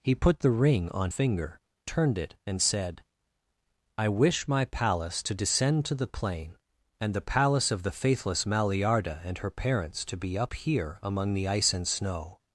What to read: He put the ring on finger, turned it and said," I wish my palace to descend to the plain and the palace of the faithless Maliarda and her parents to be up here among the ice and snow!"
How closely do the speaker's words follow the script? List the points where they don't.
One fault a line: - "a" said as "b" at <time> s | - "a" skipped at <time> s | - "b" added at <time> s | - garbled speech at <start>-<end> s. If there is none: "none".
none